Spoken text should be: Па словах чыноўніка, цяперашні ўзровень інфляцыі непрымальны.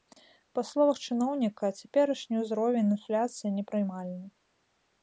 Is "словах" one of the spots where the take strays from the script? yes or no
no